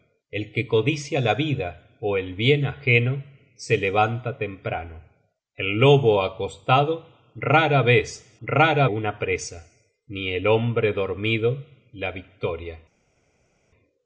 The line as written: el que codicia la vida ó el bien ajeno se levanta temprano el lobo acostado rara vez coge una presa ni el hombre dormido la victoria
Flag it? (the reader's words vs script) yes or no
yes